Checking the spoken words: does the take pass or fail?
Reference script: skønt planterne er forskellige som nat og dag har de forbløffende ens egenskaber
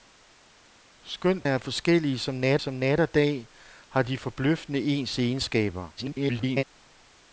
fail